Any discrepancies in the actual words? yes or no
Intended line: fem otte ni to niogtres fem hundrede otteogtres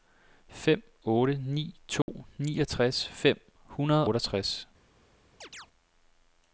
no